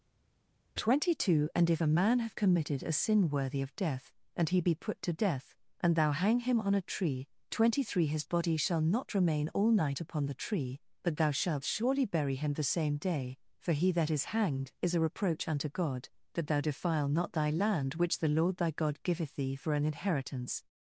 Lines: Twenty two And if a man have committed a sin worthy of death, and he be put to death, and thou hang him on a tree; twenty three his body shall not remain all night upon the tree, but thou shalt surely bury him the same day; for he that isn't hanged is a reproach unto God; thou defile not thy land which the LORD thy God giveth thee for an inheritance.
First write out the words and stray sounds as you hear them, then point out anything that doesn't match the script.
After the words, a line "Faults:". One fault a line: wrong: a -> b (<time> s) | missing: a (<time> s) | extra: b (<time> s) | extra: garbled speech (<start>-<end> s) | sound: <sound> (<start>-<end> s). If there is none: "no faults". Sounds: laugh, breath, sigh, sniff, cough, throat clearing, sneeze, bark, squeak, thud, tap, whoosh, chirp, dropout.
Twenty two And if a man have committed a sin worthy of death, and he be put to death, and thou hang him on a tree; twenty three his body shall not remain all night upon the tree, but thou shalt surely bury him the same day; for he that is hanged is a reproach unto God; that thou defile not thy land which the LORD thy God giveth thee for an inheritance.
Faults:
wrong: isn't -> is (14.1 s)
extra: that (16.3 s)